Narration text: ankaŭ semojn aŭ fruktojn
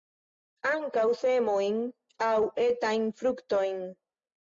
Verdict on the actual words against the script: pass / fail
fail